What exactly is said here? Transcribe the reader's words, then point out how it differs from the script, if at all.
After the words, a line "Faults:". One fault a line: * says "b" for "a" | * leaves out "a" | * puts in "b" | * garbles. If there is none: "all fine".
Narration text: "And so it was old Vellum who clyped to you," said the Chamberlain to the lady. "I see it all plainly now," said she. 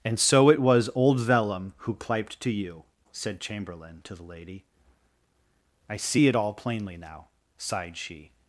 "And so it was old Vellum who clyped to you," said Chamberlain to the lady. "I see it all plainly now," sighed she.
Faults:
* leaves out "the"
* says "sighed" for "said"